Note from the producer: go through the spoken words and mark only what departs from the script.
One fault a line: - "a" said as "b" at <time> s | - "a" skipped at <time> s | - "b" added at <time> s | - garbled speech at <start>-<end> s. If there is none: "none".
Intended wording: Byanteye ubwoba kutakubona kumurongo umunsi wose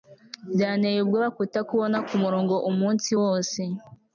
none